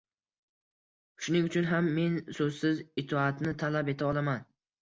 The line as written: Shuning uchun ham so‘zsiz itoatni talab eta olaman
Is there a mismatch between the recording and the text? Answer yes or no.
yes